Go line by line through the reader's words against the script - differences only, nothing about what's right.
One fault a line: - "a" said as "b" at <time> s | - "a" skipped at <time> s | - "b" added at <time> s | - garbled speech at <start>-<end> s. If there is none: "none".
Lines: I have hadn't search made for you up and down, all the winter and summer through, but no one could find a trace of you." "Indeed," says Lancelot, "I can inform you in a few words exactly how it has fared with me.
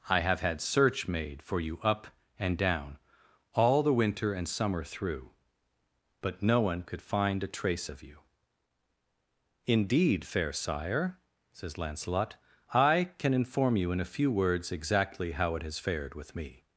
- "hadn't" said as "had" at 0.4 s
- "fair sire" added at 10.3 s